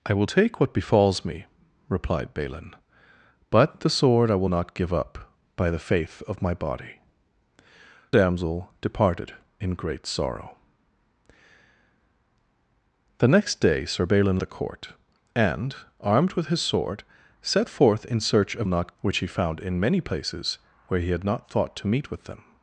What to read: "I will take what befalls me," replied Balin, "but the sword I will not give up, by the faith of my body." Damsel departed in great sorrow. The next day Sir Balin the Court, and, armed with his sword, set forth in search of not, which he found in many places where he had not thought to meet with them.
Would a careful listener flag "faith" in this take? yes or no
no